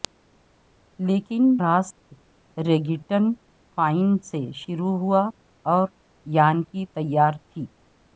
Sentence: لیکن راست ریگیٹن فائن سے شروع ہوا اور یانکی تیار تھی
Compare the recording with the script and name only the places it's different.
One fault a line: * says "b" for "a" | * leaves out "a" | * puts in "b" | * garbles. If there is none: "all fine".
all fine